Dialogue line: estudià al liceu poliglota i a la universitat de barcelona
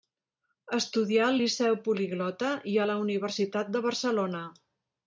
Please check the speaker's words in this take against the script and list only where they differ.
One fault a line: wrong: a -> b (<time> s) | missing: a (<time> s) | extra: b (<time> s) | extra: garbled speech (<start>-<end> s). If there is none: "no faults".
no faults